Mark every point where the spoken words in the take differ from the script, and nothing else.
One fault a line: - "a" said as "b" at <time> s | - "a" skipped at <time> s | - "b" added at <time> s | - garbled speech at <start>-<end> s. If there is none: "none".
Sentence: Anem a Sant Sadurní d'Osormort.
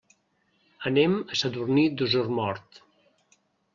- "Sant" skipped at 1.4 s